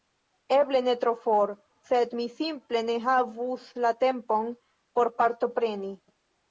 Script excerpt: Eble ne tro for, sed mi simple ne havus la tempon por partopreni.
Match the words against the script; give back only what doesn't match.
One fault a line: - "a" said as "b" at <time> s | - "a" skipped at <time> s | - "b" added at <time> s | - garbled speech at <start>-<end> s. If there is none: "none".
none